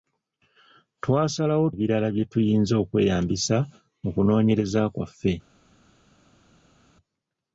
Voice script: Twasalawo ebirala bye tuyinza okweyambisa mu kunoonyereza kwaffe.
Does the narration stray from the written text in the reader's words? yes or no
no